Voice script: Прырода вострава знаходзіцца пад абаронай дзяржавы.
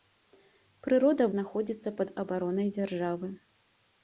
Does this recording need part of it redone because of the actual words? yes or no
yes